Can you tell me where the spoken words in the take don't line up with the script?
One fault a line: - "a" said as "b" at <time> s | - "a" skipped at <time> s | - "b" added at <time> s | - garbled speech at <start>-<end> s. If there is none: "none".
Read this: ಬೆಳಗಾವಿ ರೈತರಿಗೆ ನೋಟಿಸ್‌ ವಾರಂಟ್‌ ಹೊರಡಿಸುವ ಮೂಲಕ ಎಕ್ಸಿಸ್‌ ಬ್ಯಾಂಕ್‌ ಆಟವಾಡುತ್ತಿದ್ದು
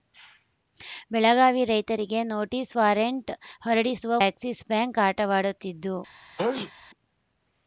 - "ಮೂಲಕ" skipped at 4.2 s